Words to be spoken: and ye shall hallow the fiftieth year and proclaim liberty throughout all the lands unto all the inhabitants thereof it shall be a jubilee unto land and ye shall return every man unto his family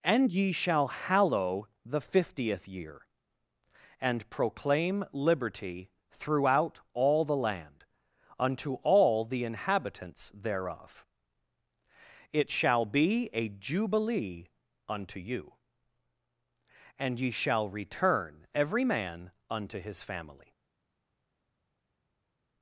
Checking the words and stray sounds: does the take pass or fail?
fail